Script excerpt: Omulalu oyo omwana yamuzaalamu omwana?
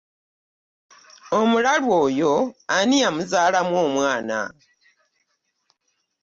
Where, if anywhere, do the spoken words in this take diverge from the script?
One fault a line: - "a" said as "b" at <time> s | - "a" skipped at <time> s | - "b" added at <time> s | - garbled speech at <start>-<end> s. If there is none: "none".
- "omwana" said as "ani" at 2.8 s